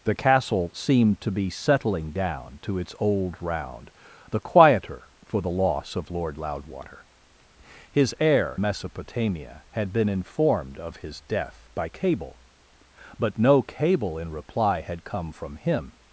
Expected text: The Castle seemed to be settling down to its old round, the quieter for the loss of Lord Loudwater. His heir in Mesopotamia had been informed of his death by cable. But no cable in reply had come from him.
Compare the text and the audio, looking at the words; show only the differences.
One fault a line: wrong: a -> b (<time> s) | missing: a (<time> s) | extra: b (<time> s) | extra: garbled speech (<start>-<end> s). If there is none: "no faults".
missing: in (8.6 s)